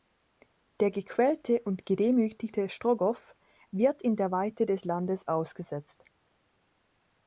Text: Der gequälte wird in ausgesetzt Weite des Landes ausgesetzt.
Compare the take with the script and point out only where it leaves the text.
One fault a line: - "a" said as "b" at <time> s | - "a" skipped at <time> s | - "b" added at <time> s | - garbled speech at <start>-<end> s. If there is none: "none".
- "und gedemütigte Strogoff" added at 1.6 s
- "ausgesetzt" said as "der" at 4.2 s